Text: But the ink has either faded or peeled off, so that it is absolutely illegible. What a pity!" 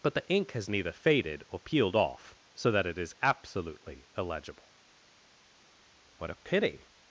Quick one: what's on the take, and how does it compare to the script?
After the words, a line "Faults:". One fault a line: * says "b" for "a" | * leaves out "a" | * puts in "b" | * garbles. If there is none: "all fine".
But the ink has neither faded or peeled off, so that it is absolutely illegible. What a pity!"
Faults:
* says "neither" for "either"